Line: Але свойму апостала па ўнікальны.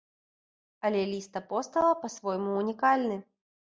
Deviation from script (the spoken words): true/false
true